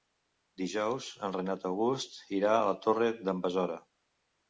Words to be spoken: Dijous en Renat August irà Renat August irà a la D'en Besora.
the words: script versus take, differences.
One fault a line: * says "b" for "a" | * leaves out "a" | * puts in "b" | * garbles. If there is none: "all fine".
* leaves out "Renat August irà"
* puts in "Torre"